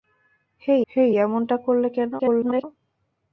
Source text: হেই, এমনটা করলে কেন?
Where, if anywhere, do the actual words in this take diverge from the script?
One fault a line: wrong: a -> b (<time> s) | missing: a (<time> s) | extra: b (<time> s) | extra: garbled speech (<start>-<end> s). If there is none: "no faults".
extra: হেই (0.9 s)
extra: garbled speech (2.2-2.6 s)